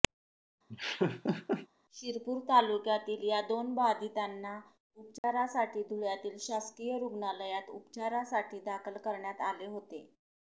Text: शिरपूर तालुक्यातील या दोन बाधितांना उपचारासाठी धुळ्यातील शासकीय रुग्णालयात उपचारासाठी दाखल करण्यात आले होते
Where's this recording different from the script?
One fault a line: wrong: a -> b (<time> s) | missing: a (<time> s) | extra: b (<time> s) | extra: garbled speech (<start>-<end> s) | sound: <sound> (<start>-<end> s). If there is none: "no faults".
sound: laugh (0.7-1.7 s)
sound: dropout (5.2-5.2 s)